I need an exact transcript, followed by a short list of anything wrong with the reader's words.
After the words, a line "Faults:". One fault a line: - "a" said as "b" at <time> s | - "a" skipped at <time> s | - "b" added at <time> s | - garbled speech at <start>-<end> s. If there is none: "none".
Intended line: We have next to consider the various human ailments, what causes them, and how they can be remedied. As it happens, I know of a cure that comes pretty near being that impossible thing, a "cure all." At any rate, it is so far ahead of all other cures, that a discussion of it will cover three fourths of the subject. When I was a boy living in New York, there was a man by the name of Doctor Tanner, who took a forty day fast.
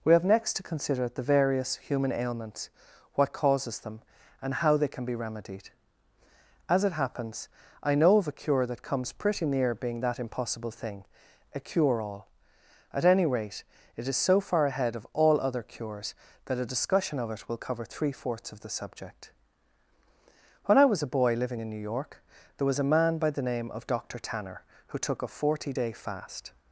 We have next to consider the various human ailments, what causes them, and how they can be remedied. As it happens, I know of a cure that comes pretty near being that impossible thing, a "cure all." At any rate, it is so far ahead of all other cures, that a discussion of it will cover three fourths of the subject. When I was a boy living in New York, there was a man by the name of Doctor Tanner, who took a forty day fast.
Faults:
none